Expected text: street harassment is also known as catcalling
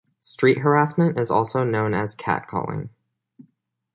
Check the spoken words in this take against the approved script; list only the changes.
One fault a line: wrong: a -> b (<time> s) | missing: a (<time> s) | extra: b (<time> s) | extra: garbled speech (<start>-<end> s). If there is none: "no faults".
no faults